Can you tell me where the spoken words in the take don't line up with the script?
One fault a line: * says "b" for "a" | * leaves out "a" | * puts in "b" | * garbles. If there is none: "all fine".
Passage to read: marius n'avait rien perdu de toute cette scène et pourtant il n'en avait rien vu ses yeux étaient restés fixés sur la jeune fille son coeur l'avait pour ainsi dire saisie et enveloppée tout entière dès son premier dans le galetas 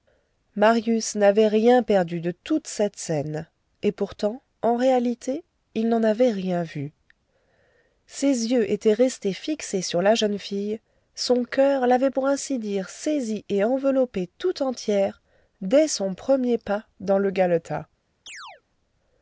* puts in "en réalité"
* puts in "pas"